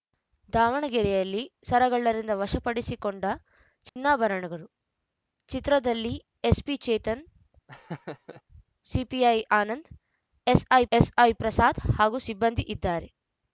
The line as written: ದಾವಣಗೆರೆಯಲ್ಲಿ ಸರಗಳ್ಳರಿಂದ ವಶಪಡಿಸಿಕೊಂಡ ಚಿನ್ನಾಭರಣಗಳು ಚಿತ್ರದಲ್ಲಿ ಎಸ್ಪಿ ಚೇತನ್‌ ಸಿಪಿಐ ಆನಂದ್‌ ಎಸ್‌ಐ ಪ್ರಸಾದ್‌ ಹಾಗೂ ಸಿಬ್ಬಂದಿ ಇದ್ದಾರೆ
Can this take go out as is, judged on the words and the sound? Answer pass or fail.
fail